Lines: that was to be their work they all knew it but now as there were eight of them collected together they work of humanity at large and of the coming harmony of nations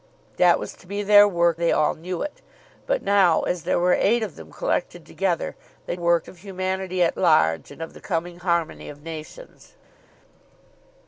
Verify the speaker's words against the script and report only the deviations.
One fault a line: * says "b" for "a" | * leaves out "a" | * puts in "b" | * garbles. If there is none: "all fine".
all fine